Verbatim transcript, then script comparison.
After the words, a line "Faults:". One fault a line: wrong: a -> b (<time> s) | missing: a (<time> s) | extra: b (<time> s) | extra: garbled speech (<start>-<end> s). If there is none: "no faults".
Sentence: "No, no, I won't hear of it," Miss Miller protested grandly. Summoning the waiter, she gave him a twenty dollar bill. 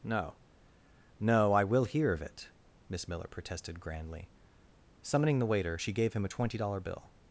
"No, no, I will hear of it," Miss Miller protested grandly. Summoning the waiter, she gave him a twenty dollar bill.
Faults:
wrong: won't -> will (1.6 s)